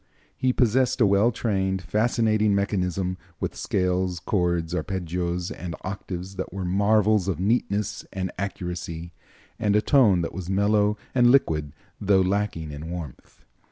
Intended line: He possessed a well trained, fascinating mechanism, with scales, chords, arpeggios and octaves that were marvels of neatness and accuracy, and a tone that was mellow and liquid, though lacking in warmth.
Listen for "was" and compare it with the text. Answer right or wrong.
right